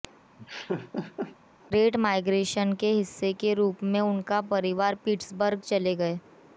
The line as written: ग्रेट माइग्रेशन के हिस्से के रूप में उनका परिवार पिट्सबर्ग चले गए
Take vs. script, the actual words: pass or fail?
pass